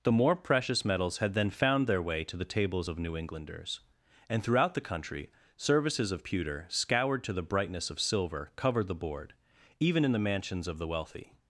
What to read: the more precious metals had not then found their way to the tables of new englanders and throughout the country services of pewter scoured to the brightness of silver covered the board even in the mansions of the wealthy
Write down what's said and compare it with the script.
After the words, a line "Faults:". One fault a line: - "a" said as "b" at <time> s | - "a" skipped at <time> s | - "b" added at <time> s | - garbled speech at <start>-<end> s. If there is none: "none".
the more precious metals had then found their way to the tables of new englanders and throughout the country services of pewter scoured to the brightness of silver covered the board even in the mansions of the wealthy
Faults:
- "not" skipped at 1.3 s